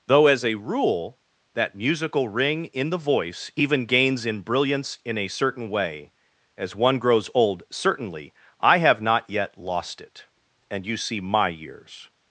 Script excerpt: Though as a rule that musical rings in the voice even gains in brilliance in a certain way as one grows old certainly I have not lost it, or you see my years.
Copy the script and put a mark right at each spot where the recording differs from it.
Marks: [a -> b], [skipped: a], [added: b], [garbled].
Though as a rule that musical [rings -> ring] in the voice even gains in brilliance in a certain way as one grows old certainly I have not [added: yet] lost it, [or -> and] you see my years.